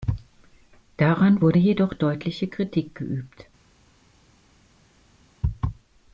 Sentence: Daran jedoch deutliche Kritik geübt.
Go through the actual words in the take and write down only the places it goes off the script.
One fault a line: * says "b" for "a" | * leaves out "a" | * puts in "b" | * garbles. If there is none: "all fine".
* puts in "wurde"